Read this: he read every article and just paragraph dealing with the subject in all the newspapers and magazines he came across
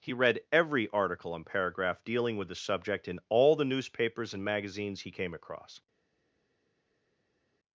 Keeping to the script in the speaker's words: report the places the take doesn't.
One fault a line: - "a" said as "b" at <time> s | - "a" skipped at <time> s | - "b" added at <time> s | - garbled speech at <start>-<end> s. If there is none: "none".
- "just" skipped at 1.4 s